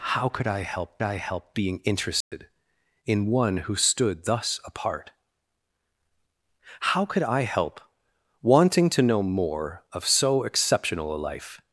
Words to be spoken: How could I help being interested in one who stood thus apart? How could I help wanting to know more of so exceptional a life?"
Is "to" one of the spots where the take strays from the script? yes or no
no